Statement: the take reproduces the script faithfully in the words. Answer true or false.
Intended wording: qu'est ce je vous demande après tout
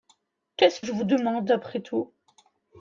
true